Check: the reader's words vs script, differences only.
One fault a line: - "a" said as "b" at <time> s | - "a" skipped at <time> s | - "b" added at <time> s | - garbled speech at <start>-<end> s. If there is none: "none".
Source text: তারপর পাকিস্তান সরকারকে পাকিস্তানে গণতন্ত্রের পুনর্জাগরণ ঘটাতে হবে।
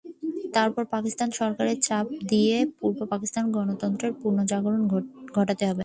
- "চাপ দিয়ে পূর্ব" added at 1.9 s